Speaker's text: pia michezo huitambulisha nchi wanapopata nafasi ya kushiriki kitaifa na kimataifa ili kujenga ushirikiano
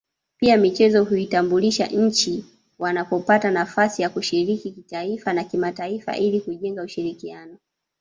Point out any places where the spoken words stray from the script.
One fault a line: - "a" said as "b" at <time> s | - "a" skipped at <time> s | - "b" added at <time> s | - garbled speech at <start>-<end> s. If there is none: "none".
none